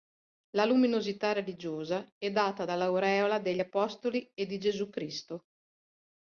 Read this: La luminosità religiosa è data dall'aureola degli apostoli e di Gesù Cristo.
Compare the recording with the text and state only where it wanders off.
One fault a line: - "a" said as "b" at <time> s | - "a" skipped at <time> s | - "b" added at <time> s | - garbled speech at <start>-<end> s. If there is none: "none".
none